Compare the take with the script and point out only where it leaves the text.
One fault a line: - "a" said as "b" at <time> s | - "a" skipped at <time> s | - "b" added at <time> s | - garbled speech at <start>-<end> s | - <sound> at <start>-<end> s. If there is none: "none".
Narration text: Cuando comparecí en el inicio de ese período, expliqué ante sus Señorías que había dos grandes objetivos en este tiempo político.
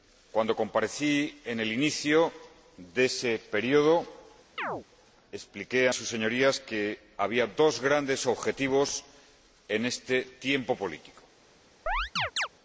- chirp at 4.6-4.9 s
- "ante" skipped at 5.9 s
- chirp at 11.9-12.5 s